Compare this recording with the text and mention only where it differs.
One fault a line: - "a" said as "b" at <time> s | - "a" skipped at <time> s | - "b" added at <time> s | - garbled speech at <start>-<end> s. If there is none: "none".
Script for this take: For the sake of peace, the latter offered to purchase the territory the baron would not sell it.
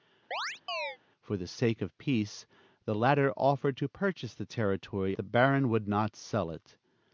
none